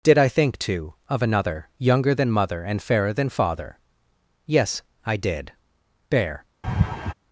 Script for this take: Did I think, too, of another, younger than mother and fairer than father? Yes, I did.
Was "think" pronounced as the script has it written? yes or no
yes